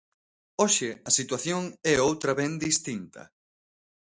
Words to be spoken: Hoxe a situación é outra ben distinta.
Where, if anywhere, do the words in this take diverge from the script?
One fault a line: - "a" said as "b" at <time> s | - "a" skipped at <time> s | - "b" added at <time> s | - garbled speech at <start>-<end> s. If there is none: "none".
none